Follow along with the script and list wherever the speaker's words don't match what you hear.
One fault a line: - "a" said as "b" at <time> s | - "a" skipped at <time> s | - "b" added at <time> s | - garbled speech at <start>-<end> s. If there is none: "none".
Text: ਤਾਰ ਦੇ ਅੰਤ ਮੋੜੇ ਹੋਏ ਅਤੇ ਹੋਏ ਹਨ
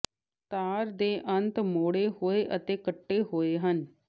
- "ਕੱਟੇ" added at 2.8 s